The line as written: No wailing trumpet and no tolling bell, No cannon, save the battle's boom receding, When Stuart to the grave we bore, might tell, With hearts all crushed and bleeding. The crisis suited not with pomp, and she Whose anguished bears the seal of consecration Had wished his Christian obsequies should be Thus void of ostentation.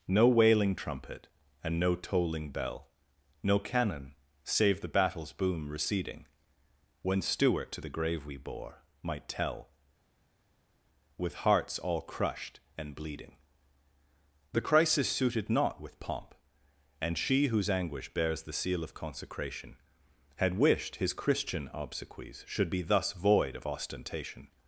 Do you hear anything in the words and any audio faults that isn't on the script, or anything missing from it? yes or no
yes